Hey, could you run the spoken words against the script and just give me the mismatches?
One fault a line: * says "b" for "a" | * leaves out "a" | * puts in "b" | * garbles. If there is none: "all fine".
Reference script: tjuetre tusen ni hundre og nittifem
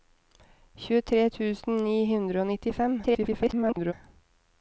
* garbles